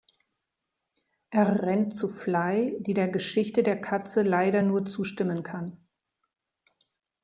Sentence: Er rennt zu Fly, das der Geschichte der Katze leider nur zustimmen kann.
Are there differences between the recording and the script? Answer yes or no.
yes